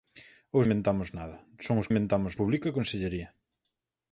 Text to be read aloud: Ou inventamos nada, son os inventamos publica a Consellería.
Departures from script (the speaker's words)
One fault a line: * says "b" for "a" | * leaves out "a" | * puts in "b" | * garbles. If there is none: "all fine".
all fine